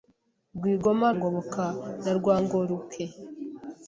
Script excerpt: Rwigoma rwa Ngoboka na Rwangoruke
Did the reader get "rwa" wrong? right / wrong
wrong